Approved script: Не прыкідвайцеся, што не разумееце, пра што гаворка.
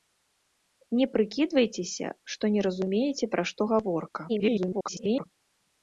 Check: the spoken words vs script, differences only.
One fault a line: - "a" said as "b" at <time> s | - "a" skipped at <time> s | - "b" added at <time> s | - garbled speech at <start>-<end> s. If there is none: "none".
- garbled speech at 4.3-5.3 s